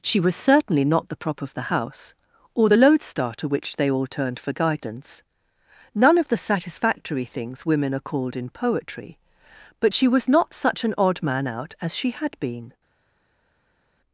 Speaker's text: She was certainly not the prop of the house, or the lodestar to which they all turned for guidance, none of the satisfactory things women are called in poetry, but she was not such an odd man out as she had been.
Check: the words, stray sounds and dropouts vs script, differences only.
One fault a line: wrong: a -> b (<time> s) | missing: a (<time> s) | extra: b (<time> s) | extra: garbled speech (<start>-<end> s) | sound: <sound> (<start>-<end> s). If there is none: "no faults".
no faults